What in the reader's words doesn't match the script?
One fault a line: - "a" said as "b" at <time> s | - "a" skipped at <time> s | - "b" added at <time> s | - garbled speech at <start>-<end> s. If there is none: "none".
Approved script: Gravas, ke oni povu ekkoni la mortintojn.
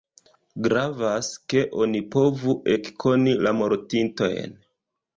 none